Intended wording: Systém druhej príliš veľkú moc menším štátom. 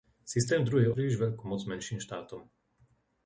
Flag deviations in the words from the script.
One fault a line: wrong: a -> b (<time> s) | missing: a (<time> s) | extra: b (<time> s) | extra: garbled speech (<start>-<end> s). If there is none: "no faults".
no faults